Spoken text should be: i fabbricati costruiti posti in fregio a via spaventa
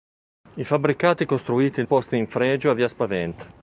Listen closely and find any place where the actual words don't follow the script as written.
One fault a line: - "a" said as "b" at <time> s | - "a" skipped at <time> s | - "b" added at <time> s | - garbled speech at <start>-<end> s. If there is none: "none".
none